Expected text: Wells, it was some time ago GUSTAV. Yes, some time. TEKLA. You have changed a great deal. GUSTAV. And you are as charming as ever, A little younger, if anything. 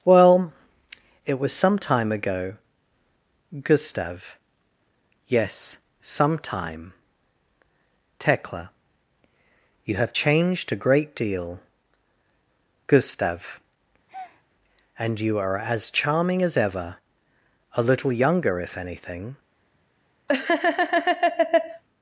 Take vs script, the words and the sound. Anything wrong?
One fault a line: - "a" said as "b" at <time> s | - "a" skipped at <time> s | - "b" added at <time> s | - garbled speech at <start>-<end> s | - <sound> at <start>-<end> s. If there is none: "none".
- "Wells" said as "Well" at 0.0 s
- breath at 14.1-14.4 s
- laugh at 20.3-21.8 s